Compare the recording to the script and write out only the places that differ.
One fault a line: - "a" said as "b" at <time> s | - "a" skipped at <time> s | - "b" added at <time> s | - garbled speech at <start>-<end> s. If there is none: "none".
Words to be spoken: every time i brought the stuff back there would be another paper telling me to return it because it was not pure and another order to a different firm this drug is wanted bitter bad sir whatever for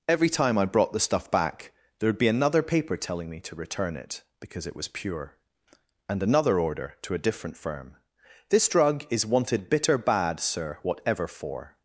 - "not" skipped at 4.9 s